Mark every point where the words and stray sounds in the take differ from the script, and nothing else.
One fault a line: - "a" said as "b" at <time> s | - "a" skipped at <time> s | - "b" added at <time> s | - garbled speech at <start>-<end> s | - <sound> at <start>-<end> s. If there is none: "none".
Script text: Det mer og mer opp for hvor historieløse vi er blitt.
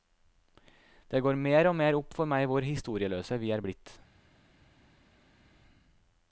- "går" added at 1.2 s
- "meg" added at 2.3 s